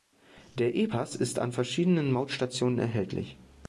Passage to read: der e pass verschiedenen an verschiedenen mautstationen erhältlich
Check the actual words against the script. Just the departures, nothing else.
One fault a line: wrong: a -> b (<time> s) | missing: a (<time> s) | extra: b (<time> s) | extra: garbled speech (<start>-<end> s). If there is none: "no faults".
wrong: verschiedenen -> ist (1.2 s)